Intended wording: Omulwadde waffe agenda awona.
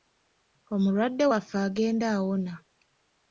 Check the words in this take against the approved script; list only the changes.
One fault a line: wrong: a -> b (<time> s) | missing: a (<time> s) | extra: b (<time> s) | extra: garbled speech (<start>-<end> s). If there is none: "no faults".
no faults